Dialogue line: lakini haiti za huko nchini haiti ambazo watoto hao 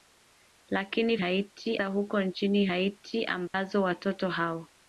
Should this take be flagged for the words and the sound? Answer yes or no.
yes